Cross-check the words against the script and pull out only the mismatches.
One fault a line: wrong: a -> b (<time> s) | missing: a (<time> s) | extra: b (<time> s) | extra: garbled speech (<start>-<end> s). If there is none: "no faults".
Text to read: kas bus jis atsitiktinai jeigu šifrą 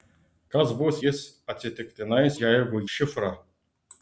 no faults